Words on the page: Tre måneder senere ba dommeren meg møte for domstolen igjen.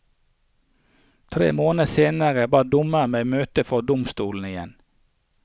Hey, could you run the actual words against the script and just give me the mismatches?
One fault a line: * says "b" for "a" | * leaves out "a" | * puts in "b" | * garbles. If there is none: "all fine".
all fine